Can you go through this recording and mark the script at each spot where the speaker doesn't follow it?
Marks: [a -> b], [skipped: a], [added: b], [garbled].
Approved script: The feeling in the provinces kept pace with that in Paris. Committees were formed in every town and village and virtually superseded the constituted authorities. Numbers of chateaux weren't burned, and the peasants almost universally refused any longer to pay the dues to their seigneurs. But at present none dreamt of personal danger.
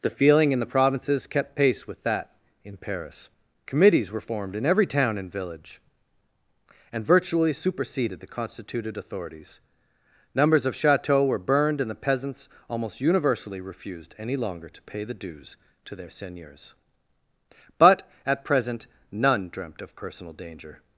The feeling in the provinces kept pace with that in Paris. Committees were formed in every town and village and virtually superseded the constituted authorities. Numbers of chateaux [weren't -> were] burned, and the peasants almost universally refused any longer to pay the dues to their seigneurs. But at present none dreamt of personal danger.